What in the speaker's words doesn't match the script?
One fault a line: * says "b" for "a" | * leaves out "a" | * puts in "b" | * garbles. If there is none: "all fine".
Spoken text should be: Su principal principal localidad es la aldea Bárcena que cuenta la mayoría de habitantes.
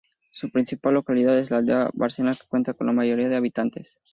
* leaves out "principal"
* puts in "con"